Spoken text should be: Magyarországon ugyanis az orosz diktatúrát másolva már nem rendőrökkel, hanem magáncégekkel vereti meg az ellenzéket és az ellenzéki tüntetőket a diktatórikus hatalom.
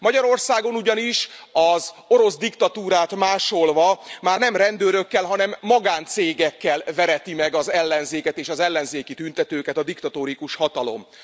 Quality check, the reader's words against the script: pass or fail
pass